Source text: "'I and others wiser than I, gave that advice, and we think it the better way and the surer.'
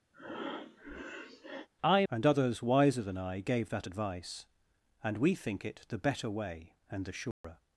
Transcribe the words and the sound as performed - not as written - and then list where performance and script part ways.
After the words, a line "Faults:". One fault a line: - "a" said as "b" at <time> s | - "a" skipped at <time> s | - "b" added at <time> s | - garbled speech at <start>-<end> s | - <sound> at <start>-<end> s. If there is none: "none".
"'I and others wiser than I, gave that advice, and we think it the better way and the surer.'
Faults:
- breath at 0.1-1.7 s
- dropout at 7.3-7.4 s